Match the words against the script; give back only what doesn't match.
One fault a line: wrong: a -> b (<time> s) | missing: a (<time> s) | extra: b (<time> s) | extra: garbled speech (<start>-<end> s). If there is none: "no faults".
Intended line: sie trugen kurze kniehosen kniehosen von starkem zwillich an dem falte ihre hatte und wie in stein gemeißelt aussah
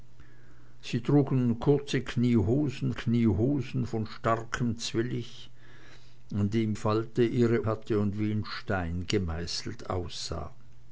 no faults